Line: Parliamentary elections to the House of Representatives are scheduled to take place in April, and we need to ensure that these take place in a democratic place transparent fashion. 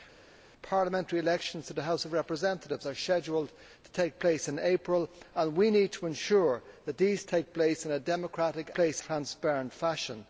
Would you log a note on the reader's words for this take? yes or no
no